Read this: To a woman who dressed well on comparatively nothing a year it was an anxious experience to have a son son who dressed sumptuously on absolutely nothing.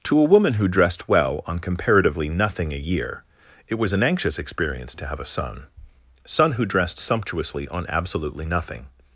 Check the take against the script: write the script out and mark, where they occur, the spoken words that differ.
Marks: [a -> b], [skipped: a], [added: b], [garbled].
To a woman who dressed well on comparatively nothing a year it was an anxious experience to have a son son who dressed sumptuously on absolutely nothing.